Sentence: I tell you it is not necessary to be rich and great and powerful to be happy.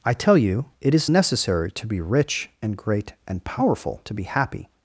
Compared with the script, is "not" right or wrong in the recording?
wrong